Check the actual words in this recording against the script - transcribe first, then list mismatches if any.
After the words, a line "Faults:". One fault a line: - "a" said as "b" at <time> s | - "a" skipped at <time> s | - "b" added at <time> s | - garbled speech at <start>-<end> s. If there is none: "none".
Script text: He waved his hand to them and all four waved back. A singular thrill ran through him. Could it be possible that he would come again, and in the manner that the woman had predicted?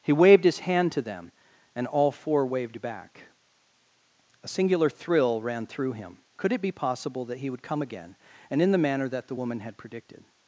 He waved his hand to them and all four waved back. A singular thrill ran through him. Could it be possible that he would come again, and in the manner that the woman had predicted?
Faults:
none